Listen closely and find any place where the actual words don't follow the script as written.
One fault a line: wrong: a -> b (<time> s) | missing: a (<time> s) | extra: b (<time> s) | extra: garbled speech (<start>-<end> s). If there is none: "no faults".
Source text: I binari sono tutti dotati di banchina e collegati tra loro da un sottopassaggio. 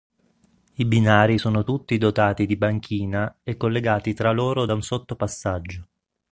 no faults